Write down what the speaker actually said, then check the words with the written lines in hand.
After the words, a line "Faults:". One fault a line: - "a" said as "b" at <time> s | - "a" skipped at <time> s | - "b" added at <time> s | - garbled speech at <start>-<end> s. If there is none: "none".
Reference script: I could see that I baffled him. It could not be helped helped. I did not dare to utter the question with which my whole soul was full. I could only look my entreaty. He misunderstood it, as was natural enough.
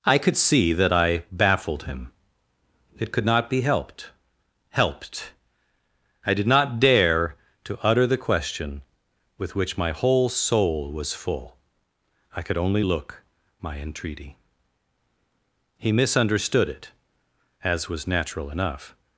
I could see that I baffled him. It could not be helped helped. I did not dare to utter the question with which my whole soul was full. I could only look my entreaty. He misunderstood it, as was natural enough.
Faults:
none